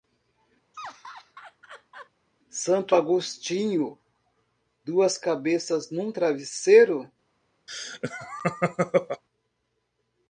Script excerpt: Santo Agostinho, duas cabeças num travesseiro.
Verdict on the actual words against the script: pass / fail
pass